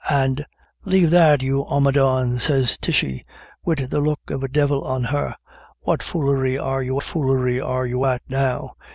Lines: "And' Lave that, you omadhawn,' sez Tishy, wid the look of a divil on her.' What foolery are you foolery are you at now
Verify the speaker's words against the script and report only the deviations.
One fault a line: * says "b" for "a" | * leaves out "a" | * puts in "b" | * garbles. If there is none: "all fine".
all fine